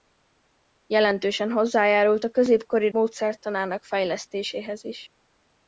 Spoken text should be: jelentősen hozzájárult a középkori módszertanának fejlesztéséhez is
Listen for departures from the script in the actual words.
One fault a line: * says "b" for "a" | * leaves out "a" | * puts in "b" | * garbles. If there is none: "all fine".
all fine